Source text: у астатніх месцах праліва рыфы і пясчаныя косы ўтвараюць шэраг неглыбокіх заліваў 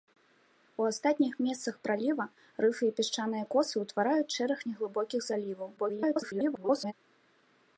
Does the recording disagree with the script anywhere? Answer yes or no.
yes